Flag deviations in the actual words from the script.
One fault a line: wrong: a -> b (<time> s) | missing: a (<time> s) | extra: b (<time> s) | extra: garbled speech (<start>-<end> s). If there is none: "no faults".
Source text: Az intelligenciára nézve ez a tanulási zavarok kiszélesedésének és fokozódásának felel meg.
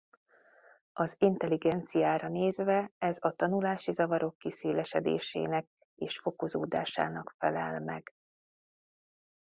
no faults